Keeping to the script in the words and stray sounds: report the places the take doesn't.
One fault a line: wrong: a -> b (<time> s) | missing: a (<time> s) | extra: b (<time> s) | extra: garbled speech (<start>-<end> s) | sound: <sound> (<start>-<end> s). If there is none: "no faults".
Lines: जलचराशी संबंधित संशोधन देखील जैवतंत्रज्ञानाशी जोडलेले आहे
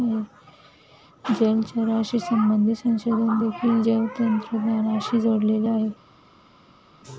no faults